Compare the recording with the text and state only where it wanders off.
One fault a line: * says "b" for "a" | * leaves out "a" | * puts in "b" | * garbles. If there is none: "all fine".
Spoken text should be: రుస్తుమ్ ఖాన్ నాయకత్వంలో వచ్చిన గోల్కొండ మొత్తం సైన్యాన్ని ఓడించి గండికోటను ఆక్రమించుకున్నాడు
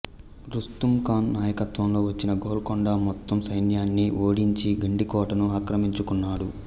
all fine